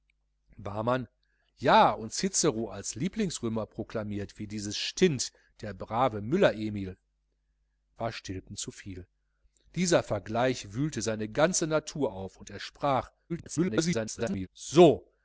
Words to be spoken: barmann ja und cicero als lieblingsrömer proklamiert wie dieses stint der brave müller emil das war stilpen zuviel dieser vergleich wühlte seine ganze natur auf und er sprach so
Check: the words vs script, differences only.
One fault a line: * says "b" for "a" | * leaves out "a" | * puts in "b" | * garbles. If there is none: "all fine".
* leaves out "das"
* garbles